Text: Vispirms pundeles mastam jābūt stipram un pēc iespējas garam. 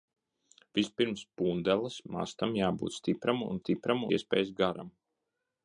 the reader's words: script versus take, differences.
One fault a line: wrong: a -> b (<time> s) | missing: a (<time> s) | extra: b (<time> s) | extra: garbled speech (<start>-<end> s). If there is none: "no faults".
wrong: pēc -> stipram (3.6 s)